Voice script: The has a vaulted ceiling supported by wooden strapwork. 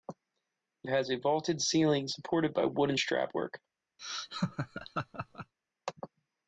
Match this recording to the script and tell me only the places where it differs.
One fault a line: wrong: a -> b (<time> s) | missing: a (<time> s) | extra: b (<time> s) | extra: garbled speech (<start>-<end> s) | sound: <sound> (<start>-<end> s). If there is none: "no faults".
sound: laugh (4.0-5.5 s)